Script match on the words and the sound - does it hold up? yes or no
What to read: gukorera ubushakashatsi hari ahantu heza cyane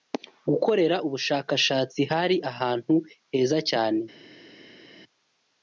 yes